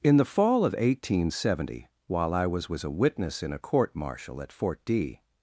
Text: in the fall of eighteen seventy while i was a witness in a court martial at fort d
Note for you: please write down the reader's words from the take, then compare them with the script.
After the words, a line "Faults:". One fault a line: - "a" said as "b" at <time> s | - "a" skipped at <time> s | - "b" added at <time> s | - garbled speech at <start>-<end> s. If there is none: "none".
in the fall of eighteen seventy while i was was a witness in a court martial at fort d
Faults:
- "was" added at 2.7 s